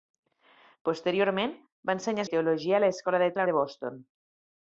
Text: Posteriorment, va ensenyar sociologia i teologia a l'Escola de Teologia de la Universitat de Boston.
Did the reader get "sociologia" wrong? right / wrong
wrong